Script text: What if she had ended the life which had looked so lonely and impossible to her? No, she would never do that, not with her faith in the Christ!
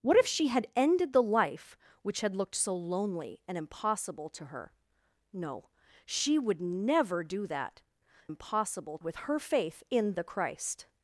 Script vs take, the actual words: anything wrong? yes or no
yes